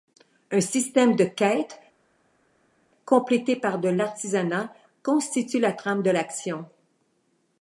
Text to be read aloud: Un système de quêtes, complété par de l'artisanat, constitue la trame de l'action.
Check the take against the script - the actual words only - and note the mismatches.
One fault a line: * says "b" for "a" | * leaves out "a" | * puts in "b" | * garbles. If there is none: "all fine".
all fine